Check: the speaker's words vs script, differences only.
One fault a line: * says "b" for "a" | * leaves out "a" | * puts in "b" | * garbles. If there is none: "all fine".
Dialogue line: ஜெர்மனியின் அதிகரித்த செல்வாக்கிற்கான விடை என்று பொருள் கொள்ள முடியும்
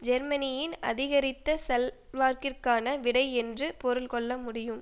all fine